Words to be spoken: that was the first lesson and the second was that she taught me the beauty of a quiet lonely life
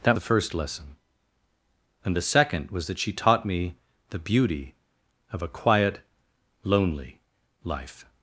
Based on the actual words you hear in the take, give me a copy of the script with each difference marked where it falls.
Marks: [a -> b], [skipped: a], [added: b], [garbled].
that [skipped: was] the first lesson and the second was that she taught me the beauty of a quiet lonely life